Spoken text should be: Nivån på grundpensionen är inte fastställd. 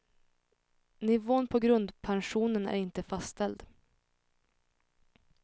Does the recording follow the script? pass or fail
pass